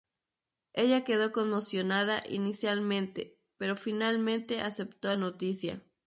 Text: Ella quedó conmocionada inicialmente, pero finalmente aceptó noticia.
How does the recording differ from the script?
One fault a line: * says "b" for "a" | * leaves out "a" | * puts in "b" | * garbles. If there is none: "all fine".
all fine